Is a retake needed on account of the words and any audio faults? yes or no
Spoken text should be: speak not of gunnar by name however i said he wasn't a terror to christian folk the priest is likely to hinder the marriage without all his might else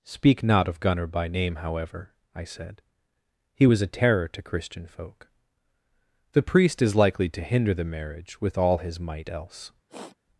yes